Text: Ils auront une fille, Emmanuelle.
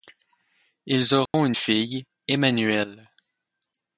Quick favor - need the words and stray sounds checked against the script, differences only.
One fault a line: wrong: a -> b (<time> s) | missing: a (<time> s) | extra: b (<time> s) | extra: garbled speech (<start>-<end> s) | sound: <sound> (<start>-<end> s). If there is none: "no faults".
sound: dropout (1.3-1.3 s)